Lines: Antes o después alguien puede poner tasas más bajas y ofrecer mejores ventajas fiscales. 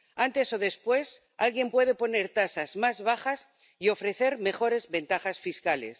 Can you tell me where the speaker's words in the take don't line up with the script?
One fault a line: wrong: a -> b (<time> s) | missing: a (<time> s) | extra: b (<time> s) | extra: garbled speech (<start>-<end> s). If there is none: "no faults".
no faults